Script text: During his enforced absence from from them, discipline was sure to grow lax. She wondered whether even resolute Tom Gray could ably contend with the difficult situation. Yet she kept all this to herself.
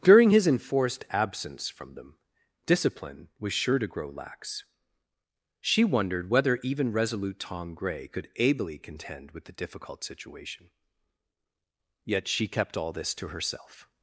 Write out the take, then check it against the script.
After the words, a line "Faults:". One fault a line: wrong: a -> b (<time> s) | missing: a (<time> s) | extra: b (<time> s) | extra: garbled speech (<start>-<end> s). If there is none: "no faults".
During his enforced absence from them, discipline was sure to grow lax. She wondered whether even resolute Tom Gray could ably contend with the difficult situation. Yet she kept all this to herself.
Faults:
missing: from (1.9 s)